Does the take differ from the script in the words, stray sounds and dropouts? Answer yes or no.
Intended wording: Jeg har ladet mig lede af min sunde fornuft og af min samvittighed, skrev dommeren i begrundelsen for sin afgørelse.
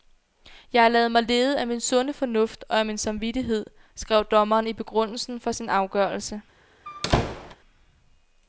yes